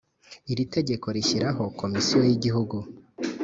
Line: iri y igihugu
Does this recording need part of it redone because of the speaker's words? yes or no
yes